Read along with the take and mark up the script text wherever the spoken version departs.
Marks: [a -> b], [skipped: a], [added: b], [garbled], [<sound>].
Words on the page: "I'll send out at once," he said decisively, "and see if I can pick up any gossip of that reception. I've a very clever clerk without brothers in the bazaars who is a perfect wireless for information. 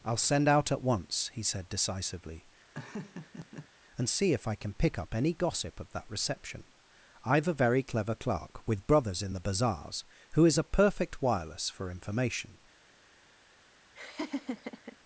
"I'll send out at once," he said decisively, [laugh] "and see if I can pick up any gossip of that reception. I've a very clever clerk [without -> with] brothers in the bazaars who is a perfect wireless for information. [laugh]